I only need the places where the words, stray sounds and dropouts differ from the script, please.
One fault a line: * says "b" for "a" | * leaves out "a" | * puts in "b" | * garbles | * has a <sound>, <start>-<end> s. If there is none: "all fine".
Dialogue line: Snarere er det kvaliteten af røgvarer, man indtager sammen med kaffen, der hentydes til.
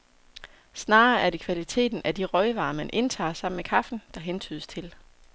* puts in "de"